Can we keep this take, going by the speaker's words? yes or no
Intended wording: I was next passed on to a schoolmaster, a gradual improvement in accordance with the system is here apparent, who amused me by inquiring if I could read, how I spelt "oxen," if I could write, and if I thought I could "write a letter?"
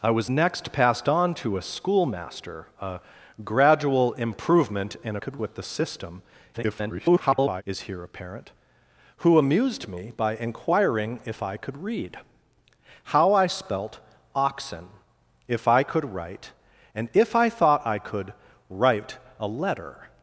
no